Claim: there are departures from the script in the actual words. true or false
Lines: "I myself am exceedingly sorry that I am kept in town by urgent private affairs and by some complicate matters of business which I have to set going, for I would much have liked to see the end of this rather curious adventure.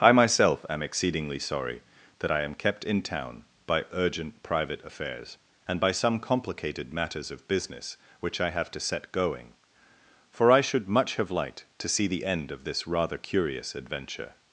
true